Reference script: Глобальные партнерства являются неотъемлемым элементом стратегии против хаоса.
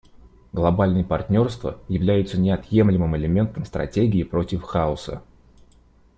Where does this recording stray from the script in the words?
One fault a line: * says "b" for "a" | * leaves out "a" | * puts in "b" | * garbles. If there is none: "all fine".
all fine